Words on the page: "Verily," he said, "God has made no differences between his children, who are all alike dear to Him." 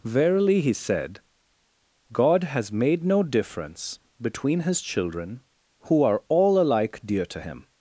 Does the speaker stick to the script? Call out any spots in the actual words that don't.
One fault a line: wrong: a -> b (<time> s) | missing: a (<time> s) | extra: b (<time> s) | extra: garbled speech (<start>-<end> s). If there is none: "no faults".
wrong: differences -> difference (3.2 s)